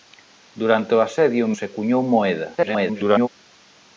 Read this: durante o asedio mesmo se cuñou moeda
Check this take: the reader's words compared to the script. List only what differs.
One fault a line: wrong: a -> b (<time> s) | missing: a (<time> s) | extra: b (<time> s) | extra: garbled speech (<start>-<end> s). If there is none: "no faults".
missing: mesmo (1.4 s)
extra: garbled speech (2.6-3.3 s)